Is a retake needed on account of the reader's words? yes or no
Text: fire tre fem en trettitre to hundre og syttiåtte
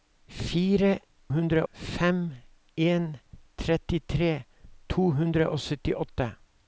yes